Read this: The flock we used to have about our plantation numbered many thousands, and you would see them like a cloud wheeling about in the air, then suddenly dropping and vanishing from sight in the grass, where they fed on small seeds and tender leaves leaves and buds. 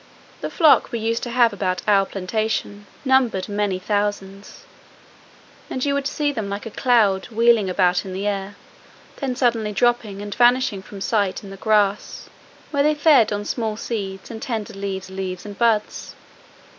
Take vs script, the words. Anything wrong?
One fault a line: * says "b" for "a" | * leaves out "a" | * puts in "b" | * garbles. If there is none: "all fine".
all fine